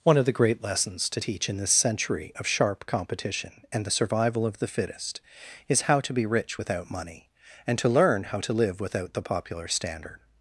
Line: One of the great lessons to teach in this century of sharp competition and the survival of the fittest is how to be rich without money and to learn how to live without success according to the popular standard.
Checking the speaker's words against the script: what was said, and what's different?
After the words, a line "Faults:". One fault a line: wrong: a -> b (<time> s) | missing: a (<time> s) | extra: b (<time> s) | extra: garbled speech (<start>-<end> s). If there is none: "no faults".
One of the great lessons to teach in this century of sharp competition and the survival of the fittest is how to be rich without money and to learn how to live without the popular standard.
Faults:
missing: success according to (9.1 s)